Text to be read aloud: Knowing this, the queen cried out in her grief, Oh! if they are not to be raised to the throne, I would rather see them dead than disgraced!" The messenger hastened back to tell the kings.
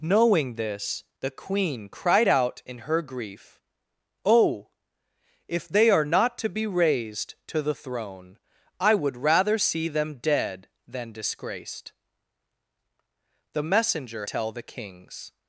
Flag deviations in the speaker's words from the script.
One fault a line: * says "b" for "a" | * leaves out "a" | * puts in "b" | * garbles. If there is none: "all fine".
* leaves out "hastened back to"